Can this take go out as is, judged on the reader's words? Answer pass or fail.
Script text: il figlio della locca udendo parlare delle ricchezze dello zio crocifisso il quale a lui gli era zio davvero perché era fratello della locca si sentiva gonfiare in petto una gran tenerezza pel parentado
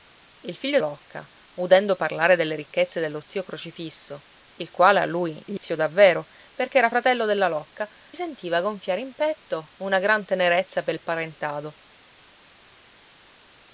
fail